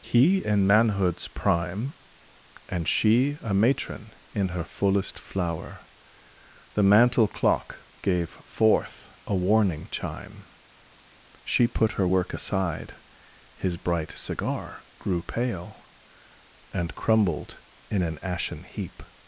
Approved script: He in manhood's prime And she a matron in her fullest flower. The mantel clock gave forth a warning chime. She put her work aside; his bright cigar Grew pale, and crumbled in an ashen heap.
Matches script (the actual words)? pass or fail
pass